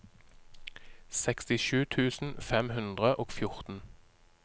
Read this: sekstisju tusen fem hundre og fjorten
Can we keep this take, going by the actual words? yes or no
yes